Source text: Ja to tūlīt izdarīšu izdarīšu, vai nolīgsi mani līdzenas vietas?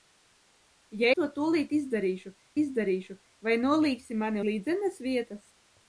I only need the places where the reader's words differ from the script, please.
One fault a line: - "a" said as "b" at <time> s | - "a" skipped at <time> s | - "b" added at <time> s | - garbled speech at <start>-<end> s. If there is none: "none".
none